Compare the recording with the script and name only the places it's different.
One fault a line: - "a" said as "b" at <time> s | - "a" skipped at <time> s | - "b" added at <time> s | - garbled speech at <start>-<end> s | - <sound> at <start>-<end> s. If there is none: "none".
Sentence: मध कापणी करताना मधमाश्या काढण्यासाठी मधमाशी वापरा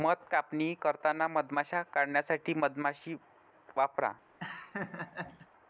- laugh at 4.4-5.5 s